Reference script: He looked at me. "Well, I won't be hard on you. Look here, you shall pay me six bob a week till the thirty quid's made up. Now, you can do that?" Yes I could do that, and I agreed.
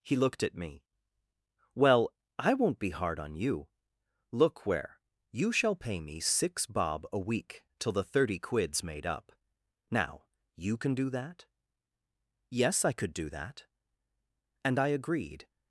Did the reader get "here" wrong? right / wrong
wrong